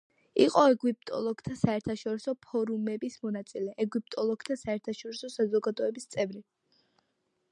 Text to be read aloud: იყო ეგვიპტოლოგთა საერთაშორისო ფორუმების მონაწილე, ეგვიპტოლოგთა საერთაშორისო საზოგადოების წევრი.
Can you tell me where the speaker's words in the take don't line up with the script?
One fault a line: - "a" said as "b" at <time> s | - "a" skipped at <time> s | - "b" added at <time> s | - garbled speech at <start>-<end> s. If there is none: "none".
none